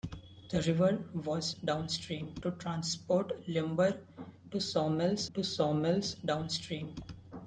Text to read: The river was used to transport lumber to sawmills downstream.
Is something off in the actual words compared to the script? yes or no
yes